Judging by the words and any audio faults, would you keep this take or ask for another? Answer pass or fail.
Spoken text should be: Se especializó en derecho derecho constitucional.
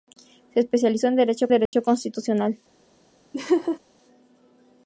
fail